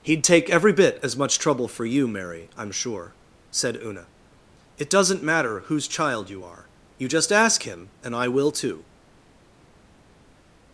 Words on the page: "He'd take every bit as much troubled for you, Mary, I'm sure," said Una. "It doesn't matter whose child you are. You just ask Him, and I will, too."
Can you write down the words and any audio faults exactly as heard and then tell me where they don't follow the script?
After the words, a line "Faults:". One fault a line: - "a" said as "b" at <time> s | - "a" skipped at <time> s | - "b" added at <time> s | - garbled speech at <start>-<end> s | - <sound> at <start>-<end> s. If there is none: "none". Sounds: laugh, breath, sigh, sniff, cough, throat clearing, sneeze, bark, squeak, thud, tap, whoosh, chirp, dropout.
"He'd take every bit as much trouble for you, Mary, I'm sure," said Una. "It doesn't matter whose child you are. You just ask Him, and I will, too."
Faults:
- "troubled" said as "trouble" at 1.4 s